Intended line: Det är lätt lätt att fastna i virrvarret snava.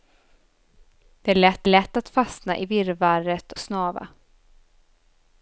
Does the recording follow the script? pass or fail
pass